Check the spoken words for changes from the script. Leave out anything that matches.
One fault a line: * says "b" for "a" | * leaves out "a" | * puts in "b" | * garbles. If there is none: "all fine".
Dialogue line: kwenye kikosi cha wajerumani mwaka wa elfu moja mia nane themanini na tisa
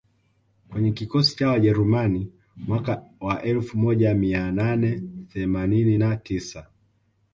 all fine